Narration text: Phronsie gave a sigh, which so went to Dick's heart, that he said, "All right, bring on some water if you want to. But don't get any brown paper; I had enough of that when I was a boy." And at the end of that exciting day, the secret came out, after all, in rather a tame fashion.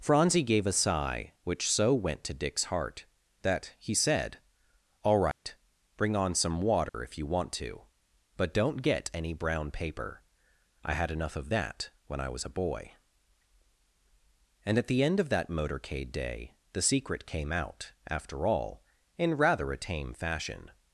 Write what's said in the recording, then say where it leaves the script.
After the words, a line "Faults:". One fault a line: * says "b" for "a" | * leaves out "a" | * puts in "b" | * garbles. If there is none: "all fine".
Phronsie gave a sigh, which so went to Dick's heart, that he said, "All right, bring on some water if you want to. But don't get any brown paper; I had enough of that when I was a boy." And at the end of that motorcade day, the secret came out, after all, in rather a tame fashion.
Faults:
* says "motorcade" for "exciting"